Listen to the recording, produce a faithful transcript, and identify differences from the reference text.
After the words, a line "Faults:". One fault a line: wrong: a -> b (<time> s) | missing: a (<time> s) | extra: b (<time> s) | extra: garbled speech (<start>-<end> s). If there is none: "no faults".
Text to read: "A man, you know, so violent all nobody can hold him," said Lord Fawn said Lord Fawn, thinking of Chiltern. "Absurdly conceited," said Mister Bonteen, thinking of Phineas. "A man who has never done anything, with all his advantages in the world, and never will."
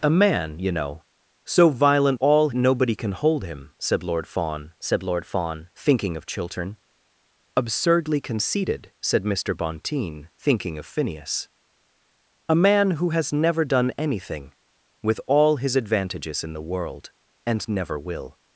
"A man, you know, so violent all nobody can hold him," said Lord Fawn said Lord Fawn, thinking of Chiltern. "Absurdly conceited," said Mister Bonteen, thinking of Phineas. "A man who has never done anything, with all his advantages in the world, and never will."
Faults:
no faults